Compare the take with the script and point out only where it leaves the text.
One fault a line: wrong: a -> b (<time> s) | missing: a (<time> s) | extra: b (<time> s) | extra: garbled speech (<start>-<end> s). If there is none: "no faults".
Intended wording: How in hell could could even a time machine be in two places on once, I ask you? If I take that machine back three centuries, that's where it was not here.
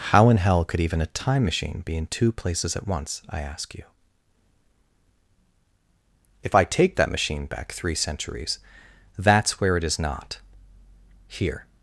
missing: could (0.8 s)
wrong: on -> at (2.8 s)
wrong: was -> is (9.8 s)